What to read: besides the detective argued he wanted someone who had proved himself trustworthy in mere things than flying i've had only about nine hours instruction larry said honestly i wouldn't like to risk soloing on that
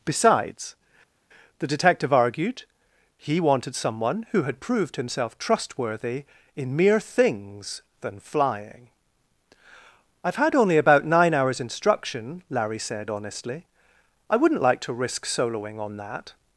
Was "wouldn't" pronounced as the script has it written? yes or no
yes